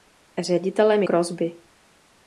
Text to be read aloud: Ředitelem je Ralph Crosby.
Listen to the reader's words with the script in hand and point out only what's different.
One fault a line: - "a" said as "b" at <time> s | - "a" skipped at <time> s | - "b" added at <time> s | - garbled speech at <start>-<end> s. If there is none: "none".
- "je Ralph" skipped at 1.0 s